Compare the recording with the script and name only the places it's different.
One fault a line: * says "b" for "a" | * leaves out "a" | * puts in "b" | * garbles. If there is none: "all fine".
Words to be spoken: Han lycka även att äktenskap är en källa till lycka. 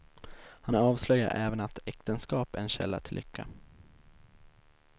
* says "avslöjar" for "lycka"